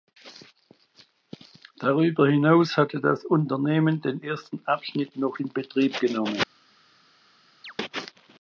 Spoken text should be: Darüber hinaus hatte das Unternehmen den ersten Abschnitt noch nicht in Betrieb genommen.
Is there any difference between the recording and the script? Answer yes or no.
yes